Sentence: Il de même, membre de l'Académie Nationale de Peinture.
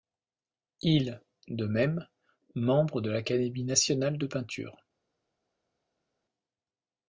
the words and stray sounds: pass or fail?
pass